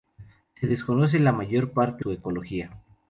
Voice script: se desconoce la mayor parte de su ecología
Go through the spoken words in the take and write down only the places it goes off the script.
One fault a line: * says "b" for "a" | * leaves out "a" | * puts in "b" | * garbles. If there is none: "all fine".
* leaves out "de"